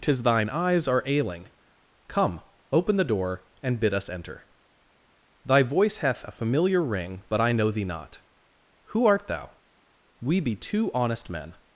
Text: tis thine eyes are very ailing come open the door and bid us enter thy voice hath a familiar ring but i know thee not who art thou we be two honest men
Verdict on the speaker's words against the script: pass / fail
fail